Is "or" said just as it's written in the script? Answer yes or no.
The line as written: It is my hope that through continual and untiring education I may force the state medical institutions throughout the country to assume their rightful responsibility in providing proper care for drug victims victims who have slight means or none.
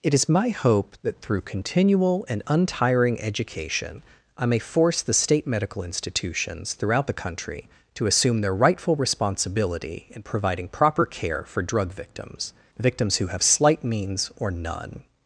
yes